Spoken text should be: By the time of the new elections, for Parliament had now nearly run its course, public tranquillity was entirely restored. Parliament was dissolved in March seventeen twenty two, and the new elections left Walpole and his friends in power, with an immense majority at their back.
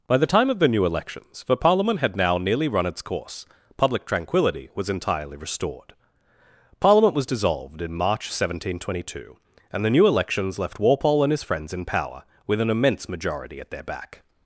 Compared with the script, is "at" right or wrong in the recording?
right